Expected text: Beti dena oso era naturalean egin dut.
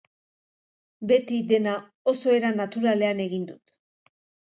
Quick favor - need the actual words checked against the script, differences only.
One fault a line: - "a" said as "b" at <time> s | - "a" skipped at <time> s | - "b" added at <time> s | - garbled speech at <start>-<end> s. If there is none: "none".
none